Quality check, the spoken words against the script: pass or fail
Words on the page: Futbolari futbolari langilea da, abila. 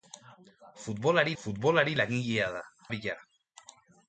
pass